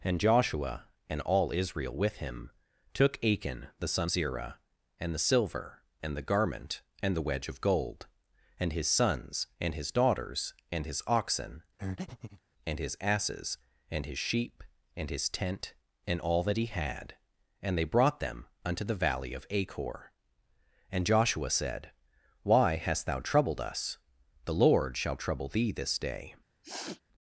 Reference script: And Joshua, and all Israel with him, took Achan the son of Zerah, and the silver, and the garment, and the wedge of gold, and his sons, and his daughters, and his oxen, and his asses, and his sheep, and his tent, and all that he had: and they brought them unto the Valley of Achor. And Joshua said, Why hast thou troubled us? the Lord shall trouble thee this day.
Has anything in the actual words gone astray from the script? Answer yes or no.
yes